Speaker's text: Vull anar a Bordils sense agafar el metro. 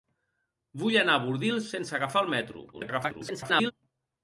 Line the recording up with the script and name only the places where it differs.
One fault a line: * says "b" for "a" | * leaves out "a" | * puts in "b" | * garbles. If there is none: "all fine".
* garbles